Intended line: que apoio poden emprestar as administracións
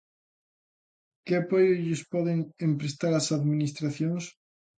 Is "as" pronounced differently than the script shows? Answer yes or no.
no